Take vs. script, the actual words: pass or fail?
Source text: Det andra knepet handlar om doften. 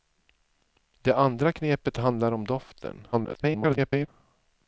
fail